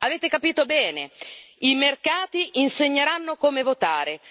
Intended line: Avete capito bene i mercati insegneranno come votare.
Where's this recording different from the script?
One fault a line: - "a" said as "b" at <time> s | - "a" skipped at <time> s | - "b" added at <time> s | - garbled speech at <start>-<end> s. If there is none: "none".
none